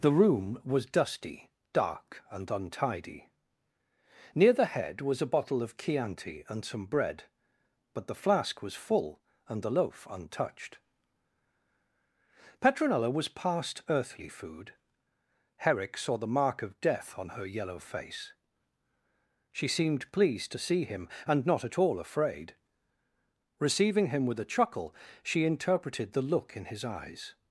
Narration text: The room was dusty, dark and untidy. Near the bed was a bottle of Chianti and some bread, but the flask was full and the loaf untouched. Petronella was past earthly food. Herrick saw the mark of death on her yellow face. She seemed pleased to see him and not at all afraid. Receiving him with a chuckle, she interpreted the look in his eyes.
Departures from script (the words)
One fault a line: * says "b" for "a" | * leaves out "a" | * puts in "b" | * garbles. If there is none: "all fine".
* says "head" for "bed"